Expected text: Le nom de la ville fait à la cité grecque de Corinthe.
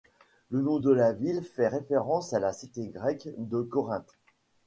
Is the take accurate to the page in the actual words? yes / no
no